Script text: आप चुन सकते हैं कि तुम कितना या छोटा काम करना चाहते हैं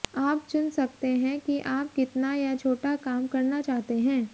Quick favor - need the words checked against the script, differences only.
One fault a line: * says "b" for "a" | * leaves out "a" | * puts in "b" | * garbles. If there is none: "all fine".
* says "आप" for "तुम"